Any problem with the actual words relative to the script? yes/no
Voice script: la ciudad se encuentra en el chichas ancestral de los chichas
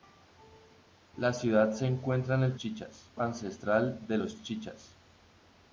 no